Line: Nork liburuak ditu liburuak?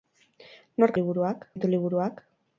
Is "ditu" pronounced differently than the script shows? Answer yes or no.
no